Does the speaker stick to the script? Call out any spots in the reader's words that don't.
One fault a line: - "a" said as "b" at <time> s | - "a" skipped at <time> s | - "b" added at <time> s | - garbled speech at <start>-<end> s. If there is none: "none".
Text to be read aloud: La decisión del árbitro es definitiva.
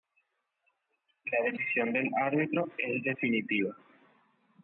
none